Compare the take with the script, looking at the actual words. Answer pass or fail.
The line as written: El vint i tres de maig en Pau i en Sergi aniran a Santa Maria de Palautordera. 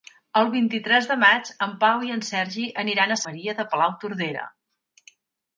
fail